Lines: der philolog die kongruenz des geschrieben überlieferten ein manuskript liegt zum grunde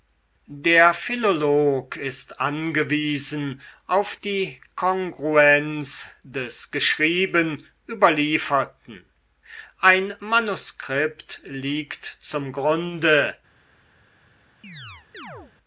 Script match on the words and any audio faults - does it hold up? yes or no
no